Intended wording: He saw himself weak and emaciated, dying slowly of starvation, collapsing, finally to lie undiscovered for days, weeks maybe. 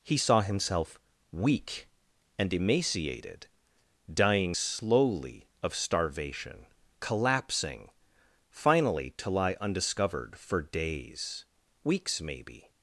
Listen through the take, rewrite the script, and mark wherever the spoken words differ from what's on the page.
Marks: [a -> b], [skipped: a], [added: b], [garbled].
He saw himself weak and emaciated, dying slowly of starvation, collapsing, finally to lie undiscovered for days, weeks maybe.